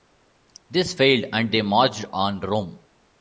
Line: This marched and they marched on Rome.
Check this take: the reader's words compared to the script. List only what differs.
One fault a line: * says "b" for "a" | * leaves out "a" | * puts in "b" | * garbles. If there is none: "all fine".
* says "failed" for "marched"